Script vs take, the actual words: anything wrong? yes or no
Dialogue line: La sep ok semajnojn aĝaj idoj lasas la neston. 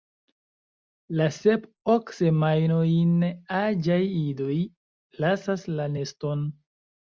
no